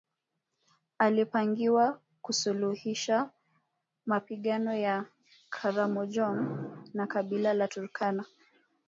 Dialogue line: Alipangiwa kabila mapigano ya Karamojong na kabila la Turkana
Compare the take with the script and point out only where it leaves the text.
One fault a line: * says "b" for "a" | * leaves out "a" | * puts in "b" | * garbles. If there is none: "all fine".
* says "kusuluhisha" for "kabila"